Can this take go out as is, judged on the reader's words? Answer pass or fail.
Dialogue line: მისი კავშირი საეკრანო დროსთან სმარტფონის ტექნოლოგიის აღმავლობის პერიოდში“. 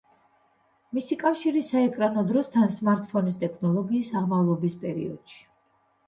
pass